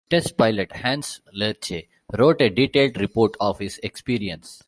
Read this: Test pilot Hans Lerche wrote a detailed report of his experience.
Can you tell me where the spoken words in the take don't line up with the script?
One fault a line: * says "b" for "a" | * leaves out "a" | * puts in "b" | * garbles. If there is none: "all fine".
all fine